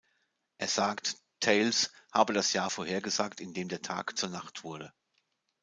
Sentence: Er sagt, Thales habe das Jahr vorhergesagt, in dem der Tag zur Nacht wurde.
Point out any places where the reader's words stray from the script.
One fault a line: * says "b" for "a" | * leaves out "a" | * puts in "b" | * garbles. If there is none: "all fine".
all fine